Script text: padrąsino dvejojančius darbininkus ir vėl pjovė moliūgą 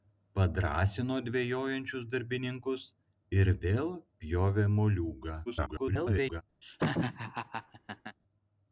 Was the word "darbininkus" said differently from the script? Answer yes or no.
no